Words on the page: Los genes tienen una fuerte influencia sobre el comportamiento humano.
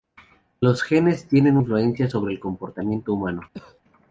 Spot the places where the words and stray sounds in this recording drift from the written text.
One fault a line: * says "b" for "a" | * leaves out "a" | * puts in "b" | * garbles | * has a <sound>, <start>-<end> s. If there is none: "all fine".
* leaves out "una fuerte"
* has a cough, 3.5-3.8 s